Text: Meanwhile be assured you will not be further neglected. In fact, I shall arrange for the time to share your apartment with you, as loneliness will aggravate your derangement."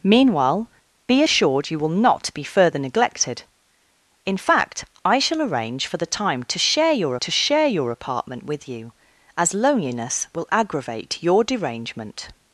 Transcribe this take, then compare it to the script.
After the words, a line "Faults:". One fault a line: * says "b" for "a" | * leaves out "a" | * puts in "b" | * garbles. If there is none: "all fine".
Meanwhile be assured you will not be further neglected. In fact, I shall arrange for the time to share your to share your apartment with you, as loneliness will aggravate your derangement."
Faults:
* puts in "to share your"